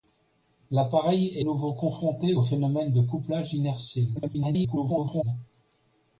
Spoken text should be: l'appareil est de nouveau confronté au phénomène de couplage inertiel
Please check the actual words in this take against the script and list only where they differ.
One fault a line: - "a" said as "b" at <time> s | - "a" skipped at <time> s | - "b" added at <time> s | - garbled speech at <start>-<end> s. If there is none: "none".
- "de" skipped at 1.4 s
- garbled speech at 4.2-5.2 s